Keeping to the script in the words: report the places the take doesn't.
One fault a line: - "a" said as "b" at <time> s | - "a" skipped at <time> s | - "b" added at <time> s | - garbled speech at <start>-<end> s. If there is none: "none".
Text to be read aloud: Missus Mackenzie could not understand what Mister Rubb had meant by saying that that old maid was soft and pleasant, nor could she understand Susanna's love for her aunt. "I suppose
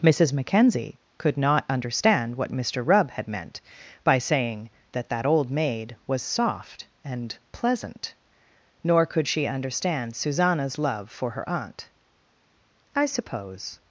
none